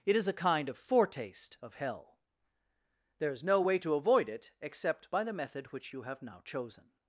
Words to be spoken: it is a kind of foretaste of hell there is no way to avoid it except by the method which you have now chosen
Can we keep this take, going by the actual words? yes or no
yes